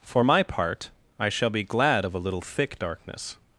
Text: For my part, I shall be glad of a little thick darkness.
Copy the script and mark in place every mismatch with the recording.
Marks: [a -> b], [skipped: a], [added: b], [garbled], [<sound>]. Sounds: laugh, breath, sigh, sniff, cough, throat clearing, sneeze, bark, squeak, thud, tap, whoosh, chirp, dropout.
For my part, I shall be glad of a little thick darkness.